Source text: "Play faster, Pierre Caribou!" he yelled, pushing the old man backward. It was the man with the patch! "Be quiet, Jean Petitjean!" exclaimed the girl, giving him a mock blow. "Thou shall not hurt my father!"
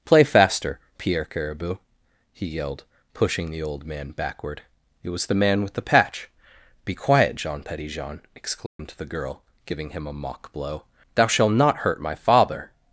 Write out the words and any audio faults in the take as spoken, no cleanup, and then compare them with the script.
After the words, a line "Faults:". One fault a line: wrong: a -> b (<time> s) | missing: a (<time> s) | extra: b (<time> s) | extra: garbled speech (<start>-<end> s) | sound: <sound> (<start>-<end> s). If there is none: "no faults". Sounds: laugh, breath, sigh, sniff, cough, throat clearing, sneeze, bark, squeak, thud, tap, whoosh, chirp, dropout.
"Play faster, Pierre Caribou!" he yelled, pushing the old man backward. It was the man with the patch! "Be quiet, Jean Petitjean!" exclaimed the girl, giving him a mock blow. "Thou shalt not hurt my father!"
Faults:
sound: dropout (8.7-8.8 s)
wrong: shall -> shalt (11.3 s)